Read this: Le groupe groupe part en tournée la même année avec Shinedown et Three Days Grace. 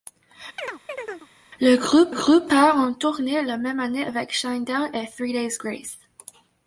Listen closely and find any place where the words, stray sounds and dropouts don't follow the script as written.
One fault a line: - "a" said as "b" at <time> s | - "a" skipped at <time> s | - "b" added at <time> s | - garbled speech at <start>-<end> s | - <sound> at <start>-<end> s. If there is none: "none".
- chirp at 0.6-1.3 s